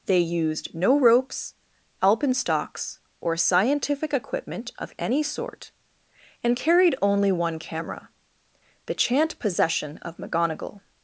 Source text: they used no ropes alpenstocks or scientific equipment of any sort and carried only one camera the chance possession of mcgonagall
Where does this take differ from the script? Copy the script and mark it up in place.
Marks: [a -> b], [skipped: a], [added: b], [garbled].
they used no ropes alpenstocks or scientific equipment of any sort and carried only one camera the [chance -> chant] possession of mcgonagall